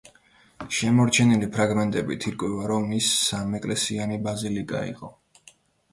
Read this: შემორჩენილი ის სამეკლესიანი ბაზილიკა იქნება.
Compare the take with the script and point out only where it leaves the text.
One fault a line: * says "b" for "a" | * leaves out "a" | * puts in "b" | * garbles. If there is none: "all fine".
* puts in "ფრაგმენტებით ირკვევა რომ"
* says "იყო" for "იქნება"